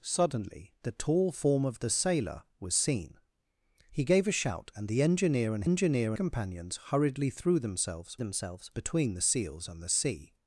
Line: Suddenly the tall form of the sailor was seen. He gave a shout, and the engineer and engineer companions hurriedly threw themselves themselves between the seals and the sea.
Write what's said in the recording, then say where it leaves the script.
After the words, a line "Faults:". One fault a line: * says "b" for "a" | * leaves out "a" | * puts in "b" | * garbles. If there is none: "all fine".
Suddenly the tall form of the sailor was seen. He gave a shout, and the engineer and engineer companions hurriedly threw themselves themselves between the seals and the sea.
Faults:
all fine